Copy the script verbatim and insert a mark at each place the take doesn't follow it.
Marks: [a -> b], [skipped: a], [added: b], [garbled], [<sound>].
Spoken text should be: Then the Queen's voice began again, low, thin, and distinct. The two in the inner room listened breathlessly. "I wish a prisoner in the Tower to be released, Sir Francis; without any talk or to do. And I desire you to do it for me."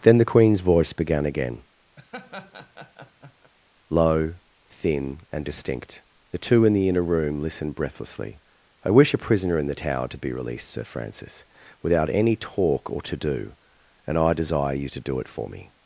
Then the Queen's voice began again, [laugh] low, thin, and distinct. The two in the inner room listened breathlessly. "I wish a prisoner in the Tower to be released, Sir Francis; without any talk or to do. And I desire you to do it for me."